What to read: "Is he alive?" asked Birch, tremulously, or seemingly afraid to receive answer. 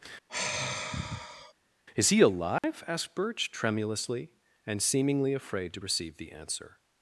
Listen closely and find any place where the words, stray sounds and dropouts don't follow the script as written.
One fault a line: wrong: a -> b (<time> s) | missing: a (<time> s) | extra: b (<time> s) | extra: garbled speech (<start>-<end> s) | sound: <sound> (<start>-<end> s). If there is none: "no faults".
sound: sigh (0.3-1.5 s)
sound: dropout (2.6-2.6 s)
wrong: or -> and (4.7 s)
extra: the (6.2 s)